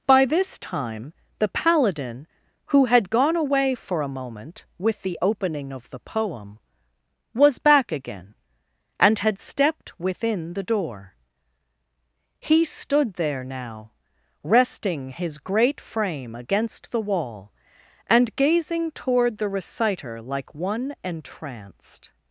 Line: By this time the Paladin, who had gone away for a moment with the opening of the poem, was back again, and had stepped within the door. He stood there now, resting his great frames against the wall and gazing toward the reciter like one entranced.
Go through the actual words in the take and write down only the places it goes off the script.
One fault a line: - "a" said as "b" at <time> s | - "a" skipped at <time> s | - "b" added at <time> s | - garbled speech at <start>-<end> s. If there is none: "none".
- "frames" said as "frame" at 15.8 s